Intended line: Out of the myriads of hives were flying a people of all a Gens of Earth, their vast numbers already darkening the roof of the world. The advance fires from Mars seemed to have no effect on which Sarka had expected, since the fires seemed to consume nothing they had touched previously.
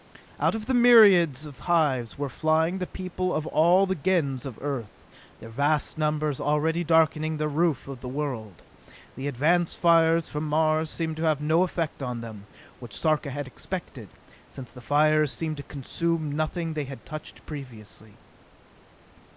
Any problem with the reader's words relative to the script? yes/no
yes